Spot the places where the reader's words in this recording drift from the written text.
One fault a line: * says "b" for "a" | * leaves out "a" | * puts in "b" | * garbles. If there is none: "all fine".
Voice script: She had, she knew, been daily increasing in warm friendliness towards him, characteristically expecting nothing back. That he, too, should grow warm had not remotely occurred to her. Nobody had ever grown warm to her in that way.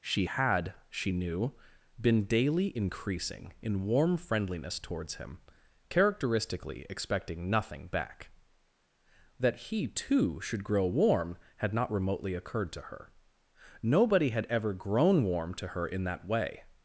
all fine